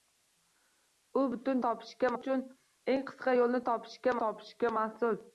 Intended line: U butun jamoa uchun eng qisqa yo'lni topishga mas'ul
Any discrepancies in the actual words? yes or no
yes